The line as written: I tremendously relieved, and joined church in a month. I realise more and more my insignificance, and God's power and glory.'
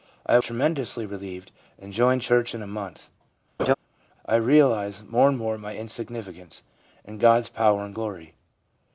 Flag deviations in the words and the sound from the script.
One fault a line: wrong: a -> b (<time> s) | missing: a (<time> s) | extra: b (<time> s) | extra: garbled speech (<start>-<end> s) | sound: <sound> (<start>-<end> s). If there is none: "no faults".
sound: laugh (3.6-3.7 s)